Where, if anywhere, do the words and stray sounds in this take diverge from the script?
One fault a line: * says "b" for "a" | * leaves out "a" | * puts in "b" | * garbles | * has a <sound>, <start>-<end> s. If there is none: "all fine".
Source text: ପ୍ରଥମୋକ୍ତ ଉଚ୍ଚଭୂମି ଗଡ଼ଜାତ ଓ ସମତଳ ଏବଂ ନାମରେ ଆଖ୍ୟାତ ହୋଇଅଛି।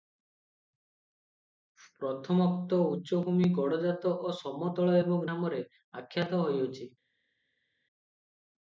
all fine